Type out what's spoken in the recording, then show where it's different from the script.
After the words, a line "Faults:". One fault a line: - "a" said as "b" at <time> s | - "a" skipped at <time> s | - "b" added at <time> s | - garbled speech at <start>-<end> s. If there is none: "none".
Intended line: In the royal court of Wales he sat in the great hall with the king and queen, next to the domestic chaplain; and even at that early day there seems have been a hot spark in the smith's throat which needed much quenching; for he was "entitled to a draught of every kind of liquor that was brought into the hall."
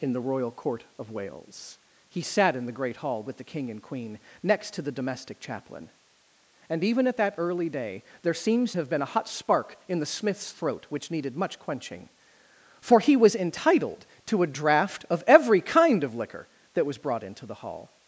In the royal court of Wales he sat in the great hall with the king and queen, next to the domestic chaplain; and even at that early day there seems have been a hot spark in the smith's throat which needed much quenching; for he was "entitled to a draught of every kind of liquor that was brought into the hall."
Faults:
none